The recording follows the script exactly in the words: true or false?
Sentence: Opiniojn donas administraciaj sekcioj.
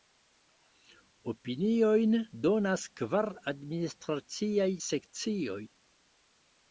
false